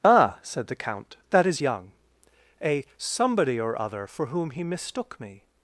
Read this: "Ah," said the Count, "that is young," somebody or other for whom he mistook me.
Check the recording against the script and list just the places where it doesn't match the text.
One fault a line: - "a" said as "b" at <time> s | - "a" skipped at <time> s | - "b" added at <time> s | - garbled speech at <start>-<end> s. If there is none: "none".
- "a" added at 2.6 s